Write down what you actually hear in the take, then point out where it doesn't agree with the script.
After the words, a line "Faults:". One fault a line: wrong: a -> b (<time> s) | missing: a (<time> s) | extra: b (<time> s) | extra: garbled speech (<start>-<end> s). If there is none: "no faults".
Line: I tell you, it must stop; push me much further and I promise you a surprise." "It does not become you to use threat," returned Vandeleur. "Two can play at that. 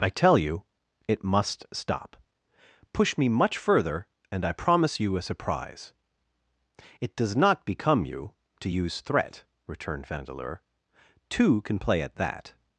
I tell you, it must stop; push me much further and I promise you a surprise." "It does not become you to use threat," returned Vandeleur. "Two can play at that.
Faults:
no faults